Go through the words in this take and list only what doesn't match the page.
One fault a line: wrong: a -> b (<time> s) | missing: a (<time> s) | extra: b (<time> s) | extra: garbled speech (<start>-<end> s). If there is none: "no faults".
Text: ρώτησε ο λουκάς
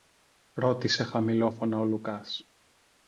extra: χαμηλόφωνα (1.0 s)